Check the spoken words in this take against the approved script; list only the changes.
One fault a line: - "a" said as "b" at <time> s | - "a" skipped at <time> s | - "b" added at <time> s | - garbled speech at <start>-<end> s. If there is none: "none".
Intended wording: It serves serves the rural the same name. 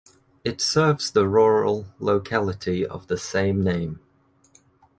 - "serves" skipped at 1.1 s
- "locality of" added at 2.0 s